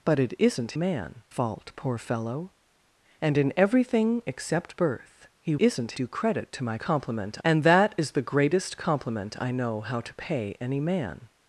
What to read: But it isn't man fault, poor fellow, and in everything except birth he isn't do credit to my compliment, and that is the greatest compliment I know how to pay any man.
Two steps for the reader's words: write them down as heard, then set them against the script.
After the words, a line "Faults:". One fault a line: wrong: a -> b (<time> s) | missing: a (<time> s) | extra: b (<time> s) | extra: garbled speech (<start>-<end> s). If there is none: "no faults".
But it isn't man fault, poor fellow, and in everything except birth he isn't do credit to my compliment, and that is the greatest compliment I know how to pay any man.
Faults:
no faults